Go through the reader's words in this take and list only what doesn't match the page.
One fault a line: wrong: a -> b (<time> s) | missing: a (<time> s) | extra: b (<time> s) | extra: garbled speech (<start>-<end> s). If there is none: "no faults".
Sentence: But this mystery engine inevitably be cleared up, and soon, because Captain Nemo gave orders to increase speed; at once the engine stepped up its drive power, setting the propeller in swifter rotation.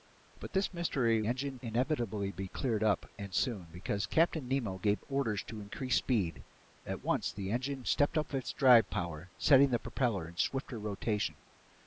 no faults